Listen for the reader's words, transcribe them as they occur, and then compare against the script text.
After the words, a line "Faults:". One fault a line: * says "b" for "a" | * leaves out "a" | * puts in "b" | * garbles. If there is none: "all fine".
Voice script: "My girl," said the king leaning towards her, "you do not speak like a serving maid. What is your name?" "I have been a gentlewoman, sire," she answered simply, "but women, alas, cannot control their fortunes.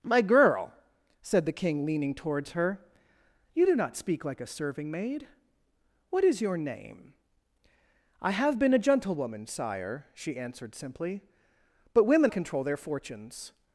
"My girl," said the king leaning towards her, "you do not speak like a serving maid. What is your name?" "I have been a gentlewoman, sire," she answered simply, "but women, control their fortunes.
Faults:
* leaves out "alas cannot"